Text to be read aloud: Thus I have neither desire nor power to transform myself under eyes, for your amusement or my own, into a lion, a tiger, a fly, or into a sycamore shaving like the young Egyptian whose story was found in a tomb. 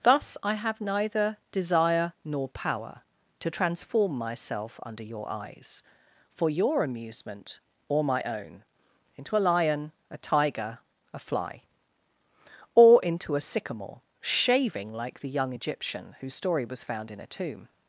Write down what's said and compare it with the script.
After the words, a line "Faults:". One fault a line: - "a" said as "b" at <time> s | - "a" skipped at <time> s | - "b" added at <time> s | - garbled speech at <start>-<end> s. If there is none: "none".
Thus I have neither desire nor power to transform myself under your eyes, for your amusement or my own, into a lion, a tiger, a fly, or into a sycamore shaving like the young Egyptian whose story was found in a tomb.
Faults:
- "your" added at 5.0 s